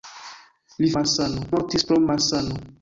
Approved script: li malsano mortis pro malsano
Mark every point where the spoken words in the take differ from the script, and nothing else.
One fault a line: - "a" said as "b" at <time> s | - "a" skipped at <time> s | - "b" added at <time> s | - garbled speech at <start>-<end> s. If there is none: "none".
none